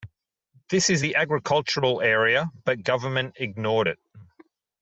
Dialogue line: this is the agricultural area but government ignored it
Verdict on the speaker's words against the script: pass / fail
pass